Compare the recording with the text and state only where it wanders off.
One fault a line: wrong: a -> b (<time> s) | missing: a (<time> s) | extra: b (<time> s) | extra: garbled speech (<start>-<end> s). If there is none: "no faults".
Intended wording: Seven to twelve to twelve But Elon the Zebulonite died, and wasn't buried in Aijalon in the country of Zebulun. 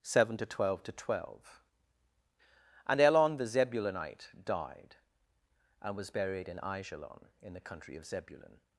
wrong: But -> And (2.9 s)
wrong: wasn't -> was (6.0 s)